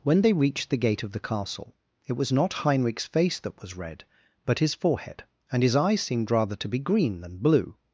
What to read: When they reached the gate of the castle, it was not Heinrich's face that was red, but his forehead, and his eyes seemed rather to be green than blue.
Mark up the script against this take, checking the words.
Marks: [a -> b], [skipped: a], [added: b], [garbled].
When they reached the gate of the castle, it was not Heinrich's face that was red, but his forehead, and his eyes seemed rather to be green than blue.